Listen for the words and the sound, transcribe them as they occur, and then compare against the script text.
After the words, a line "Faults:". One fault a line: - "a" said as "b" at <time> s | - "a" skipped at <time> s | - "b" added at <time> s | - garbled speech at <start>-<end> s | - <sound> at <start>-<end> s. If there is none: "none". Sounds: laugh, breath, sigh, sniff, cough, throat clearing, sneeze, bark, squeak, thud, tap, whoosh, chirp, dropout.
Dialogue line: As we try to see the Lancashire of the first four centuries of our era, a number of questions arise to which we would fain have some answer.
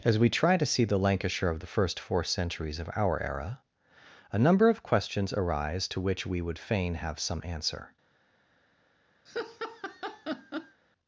As we try to see the Lancashire of the first four centuries of our era, a number of questions arise to which we would fain have some answer.
Faults:
- laugh at 9.3-10.8 s